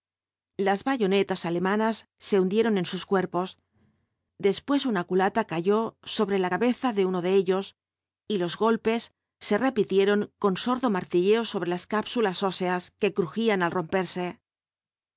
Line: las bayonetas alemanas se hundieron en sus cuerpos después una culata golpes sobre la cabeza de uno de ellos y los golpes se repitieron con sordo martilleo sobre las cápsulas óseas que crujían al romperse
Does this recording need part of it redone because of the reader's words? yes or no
yes